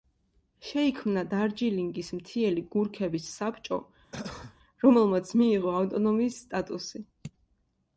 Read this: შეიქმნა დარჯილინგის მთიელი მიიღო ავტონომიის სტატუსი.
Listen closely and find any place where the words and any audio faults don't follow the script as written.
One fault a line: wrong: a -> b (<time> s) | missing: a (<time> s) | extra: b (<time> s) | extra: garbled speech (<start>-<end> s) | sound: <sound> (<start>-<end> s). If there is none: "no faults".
extra: გურქების საბჭო რომელმაც (2.7 s)
sound: cough (4.1-4.6 s)